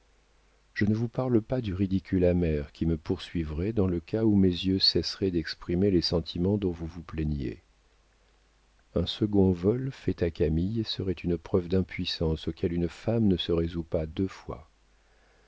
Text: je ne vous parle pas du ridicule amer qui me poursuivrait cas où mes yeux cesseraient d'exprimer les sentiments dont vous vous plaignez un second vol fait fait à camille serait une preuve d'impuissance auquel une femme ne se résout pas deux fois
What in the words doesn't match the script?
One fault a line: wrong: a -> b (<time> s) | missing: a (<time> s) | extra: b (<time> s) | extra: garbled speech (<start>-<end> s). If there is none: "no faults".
extra: dans le (3.7 s)
missing: fait (10.2 s)